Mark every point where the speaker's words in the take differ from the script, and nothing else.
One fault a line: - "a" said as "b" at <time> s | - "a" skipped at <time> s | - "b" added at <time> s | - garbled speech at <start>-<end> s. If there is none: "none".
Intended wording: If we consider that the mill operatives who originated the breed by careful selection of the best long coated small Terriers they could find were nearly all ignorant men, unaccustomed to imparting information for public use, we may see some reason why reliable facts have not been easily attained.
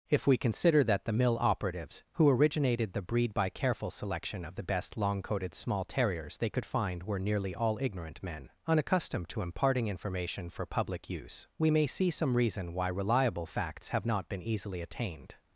none